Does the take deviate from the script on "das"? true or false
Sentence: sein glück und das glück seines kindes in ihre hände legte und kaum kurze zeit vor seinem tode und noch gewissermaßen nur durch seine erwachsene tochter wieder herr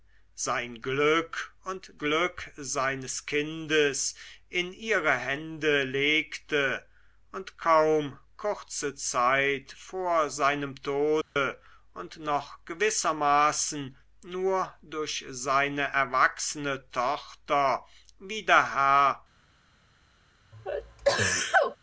true